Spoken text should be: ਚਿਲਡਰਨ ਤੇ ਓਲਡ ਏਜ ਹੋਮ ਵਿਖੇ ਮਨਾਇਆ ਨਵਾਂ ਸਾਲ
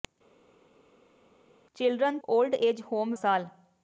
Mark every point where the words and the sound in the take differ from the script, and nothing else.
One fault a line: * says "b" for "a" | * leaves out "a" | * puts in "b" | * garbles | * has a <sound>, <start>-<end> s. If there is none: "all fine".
* leaves out "ਤੇ"
* leaves out "ਵਿਖੇ ਮਨਾਇਆ ਨਵਾਂ"